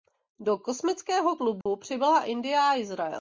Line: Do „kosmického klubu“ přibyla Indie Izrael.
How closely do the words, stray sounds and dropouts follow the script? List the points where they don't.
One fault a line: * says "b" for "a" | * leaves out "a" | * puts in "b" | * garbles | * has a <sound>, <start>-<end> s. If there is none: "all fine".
* has a dropout, 1.6-1.7 s
* puts in "a"